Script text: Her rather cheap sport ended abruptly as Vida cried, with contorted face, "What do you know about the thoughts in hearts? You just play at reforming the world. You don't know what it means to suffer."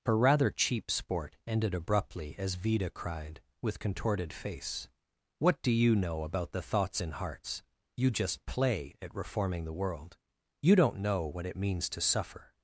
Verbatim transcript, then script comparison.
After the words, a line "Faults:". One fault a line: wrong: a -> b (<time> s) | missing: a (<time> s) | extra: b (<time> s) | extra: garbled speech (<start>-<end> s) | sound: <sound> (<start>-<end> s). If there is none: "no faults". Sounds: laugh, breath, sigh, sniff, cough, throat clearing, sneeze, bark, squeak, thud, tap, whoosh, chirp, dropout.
Her rather cheap sport ended abruptly as Vida cried, with contorted face, "What do you know about the thoughts in hearts? You just play at reforming the world. You don't know what it means to suffer."
Faults:
no faults